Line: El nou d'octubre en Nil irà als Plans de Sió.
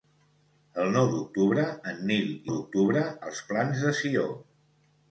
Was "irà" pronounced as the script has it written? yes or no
no